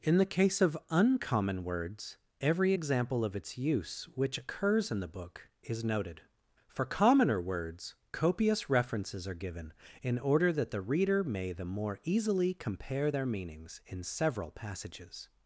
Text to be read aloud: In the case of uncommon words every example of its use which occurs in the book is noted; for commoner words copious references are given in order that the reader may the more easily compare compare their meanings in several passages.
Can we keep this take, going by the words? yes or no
no